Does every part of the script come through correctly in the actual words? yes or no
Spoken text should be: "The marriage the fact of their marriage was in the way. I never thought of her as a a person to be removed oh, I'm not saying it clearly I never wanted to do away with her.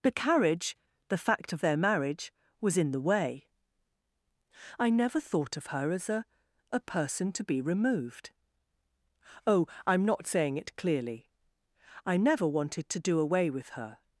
no